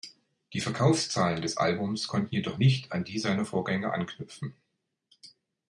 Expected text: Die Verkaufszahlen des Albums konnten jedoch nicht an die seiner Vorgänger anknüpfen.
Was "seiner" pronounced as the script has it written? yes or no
yes